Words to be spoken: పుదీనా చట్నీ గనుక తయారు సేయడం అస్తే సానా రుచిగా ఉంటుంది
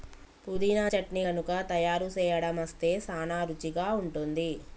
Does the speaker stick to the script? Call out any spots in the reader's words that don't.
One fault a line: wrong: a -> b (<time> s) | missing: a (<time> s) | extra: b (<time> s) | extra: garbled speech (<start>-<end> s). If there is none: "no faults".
no faults